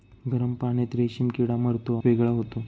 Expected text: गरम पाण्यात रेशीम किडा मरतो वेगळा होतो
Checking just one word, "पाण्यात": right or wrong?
right